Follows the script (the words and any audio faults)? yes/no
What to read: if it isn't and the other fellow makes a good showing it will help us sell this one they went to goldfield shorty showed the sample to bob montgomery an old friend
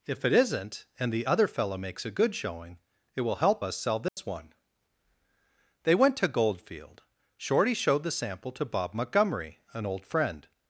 no